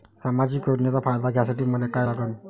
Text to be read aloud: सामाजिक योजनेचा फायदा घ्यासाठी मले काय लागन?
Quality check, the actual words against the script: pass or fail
pass